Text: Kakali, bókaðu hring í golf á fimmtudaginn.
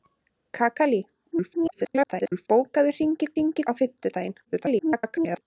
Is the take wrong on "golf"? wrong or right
wrong